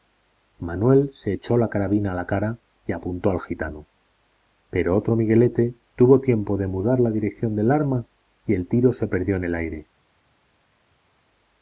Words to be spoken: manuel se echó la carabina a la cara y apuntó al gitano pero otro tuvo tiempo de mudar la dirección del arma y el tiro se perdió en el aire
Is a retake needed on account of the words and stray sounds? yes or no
yes